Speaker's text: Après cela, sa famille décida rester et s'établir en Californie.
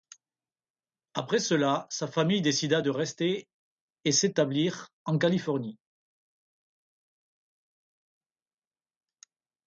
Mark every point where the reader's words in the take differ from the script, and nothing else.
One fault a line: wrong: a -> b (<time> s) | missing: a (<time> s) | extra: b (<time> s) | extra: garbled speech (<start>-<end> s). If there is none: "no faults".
extra: de (2.8 s)